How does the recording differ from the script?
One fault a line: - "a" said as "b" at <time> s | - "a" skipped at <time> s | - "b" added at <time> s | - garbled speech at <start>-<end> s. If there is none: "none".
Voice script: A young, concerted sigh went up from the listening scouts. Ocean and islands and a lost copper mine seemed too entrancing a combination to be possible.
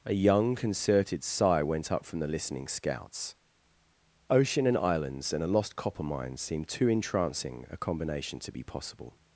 none